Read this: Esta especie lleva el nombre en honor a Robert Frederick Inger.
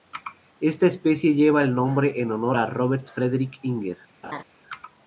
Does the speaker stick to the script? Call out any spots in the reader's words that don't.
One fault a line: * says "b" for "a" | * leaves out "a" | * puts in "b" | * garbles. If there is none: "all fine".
all fine